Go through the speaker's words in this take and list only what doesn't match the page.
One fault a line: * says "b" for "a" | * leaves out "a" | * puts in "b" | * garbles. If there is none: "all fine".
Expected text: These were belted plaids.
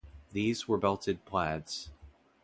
all fine